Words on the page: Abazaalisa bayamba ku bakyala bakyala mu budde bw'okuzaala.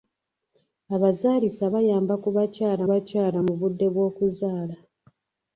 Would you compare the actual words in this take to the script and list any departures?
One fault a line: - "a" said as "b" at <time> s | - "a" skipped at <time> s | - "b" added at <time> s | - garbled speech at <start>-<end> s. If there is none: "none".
none